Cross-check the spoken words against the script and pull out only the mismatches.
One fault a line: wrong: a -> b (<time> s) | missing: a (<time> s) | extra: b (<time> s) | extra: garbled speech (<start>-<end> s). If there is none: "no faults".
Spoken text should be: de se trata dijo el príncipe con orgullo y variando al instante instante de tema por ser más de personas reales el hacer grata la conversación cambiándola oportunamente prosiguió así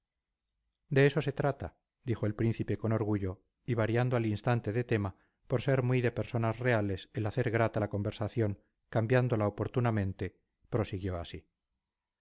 extra: eso (1.1 s)
missing: instante (4.7 s)
wrong: más -> muy (5.8 s)